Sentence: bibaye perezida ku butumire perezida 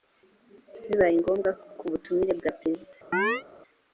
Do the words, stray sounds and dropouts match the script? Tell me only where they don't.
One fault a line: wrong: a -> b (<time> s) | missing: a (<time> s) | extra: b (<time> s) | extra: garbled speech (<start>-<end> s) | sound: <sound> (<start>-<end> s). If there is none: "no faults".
wrong: perezida -> ngombwa (1.2 s)
extra: bwa (2.4 s)
sound: chirp (3.1-3.4 s)